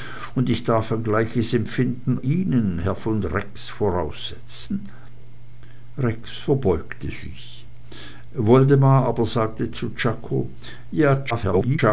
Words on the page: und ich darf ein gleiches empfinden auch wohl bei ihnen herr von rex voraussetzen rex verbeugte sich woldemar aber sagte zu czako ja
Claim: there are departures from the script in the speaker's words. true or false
true